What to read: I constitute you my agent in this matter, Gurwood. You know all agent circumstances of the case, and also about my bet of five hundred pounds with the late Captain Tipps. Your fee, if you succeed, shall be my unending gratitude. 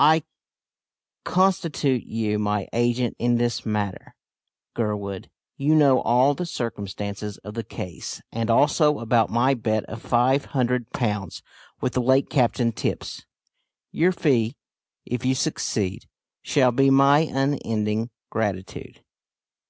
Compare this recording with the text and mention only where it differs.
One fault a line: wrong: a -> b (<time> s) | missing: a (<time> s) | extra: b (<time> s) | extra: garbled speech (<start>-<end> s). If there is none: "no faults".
wrong: agent -> the (6.3 s)